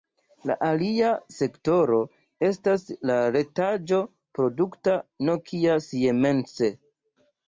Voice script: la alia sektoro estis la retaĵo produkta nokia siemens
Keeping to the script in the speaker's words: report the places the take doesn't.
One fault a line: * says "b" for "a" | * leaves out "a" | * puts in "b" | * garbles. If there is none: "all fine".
* says "estas" for "estis"